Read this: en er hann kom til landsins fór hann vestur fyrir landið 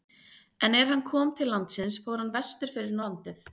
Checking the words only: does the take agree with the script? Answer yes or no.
yes